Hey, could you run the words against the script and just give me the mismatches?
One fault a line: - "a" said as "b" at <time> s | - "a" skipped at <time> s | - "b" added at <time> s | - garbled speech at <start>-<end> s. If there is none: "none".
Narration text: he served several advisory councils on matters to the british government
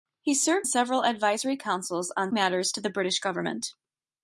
none